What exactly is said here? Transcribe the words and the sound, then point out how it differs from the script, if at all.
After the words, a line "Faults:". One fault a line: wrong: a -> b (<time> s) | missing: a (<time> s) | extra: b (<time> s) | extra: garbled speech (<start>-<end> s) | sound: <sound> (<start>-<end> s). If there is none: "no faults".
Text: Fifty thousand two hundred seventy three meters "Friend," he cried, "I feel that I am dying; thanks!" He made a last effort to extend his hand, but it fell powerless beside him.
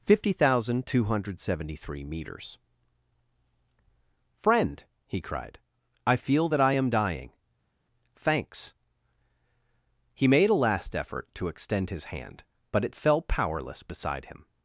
Fifty thousand two hundred seventy three meters "Friend," he cried, "I feel that I am dying; thanks!" He made a last effort to extend his hand, but it fell powerless beside him.
Faults:
no faults